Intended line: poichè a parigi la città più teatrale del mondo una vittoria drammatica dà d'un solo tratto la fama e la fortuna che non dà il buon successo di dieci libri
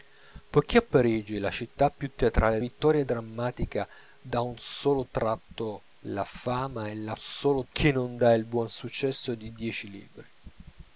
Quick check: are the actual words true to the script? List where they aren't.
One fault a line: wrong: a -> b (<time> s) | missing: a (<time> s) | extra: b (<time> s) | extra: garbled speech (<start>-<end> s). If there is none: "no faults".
missing: del mondo una (2.6 s)
wrong: fortuna -> solo (7.2 s)